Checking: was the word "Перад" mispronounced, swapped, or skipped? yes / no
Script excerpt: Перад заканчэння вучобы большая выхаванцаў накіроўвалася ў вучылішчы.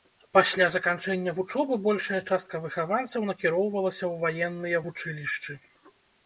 yes